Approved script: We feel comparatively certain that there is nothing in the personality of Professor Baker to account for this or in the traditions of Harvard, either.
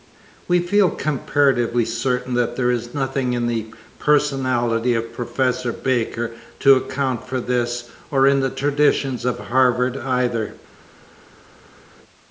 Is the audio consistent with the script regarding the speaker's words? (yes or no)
yes